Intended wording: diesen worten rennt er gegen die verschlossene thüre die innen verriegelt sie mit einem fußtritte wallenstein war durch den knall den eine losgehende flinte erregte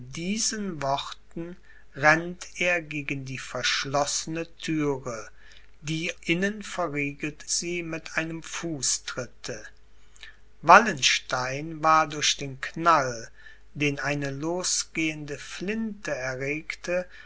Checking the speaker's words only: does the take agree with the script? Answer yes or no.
yes